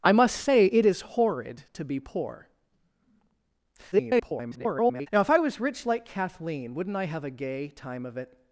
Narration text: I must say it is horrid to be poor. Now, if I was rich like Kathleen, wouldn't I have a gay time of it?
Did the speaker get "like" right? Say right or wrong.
right